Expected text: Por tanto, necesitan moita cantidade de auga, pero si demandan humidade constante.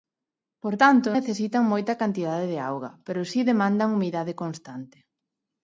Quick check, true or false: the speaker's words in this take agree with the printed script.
true